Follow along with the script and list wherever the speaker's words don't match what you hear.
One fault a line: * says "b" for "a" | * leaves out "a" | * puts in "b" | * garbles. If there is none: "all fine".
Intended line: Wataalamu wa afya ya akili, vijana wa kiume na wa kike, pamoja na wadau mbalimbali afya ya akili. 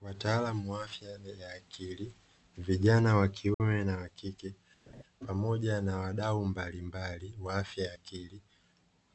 * puts in "wa"